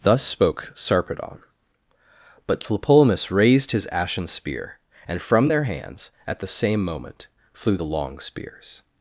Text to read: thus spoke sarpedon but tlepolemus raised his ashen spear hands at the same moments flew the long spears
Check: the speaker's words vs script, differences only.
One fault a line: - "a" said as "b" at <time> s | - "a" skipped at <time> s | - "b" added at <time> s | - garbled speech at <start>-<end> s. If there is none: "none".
- "and from their" added at 5.1 s
- "moments" said as "moment" at 6.8 s